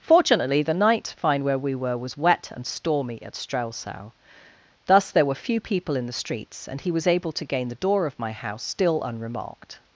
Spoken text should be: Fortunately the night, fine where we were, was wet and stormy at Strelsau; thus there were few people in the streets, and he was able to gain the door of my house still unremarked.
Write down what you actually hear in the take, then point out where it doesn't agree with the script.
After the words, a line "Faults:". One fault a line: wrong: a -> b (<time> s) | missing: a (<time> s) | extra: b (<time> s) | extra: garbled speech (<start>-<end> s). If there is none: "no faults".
Fortunately the night, fine where we were, was wet and stormy at Strelsau; thus there were few people in the streets, and he was able to gain the door of my house still unremarked.
Faults:
no faults